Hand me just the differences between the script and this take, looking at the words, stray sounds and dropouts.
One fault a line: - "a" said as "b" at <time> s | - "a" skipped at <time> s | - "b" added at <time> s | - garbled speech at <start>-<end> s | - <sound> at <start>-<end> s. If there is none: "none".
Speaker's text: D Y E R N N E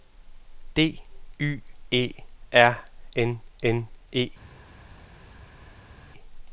none